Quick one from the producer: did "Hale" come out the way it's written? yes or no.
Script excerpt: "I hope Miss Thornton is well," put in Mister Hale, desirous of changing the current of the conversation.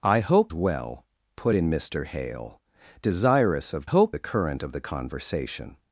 yes